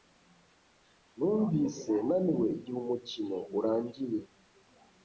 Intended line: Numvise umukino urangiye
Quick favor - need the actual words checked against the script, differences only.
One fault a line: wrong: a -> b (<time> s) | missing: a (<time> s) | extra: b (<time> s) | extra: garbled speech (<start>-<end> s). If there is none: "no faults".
extra: naniwe igihe (2.1 s)